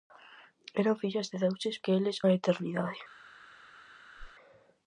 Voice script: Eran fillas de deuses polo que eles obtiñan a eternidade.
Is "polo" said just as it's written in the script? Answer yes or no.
no